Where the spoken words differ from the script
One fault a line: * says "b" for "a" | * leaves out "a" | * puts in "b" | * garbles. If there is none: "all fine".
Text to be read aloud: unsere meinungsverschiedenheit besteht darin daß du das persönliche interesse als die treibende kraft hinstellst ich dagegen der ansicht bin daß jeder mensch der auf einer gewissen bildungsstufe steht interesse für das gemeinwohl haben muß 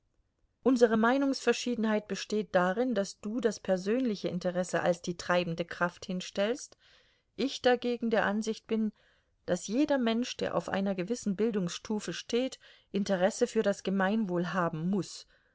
all fine